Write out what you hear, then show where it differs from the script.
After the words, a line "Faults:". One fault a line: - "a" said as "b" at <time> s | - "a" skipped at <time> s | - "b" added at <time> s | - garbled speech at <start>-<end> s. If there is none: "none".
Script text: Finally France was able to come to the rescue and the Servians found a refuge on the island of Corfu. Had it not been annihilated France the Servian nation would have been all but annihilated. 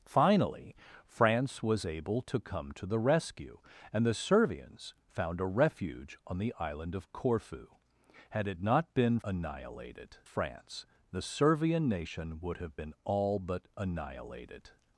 Finally France was able to come to the rescue and the Servians found a refuge on the island of Corfu. Had it not been annihilated France the Servian nation would have been all but annihilated.
Faults:
none